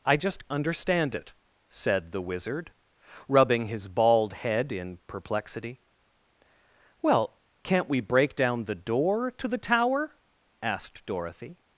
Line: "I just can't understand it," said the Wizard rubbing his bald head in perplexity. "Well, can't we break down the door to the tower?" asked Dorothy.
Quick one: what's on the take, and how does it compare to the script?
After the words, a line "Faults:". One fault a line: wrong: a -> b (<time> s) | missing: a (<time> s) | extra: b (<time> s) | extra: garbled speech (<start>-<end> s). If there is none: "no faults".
"I just understand it," said the Wizard rubbing his bald head in perplexity. "Well, can't we break down the door to the tower?" asked Dorothy.
Faults:
missing: can't (0.5 s)